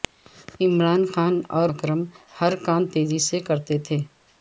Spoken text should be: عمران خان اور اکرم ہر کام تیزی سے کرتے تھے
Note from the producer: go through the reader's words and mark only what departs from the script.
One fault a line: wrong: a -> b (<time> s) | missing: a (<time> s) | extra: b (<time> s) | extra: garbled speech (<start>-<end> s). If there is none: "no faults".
no faults